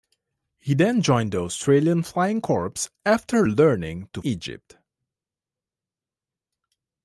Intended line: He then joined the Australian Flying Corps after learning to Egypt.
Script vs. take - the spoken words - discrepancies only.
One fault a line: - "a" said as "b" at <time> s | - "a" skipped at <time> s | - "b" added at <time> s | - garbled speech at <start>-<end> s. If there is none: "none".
none